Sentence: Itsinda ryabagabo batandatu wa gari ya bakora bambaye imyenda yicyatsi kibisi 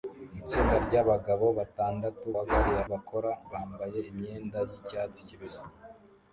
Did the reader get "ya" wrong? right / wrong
right